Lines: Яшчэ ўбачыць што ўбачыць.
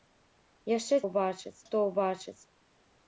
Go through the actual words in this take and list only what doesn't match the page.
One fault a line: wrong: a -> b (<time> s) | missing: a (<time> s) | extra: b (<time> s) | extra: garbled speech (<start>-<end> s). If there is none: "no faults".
no faults